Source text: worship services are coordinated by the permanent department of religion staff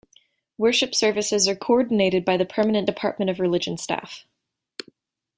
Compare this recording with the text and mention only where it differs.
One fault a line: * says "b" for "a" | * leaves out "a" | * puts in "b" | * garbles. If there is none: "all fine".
all fine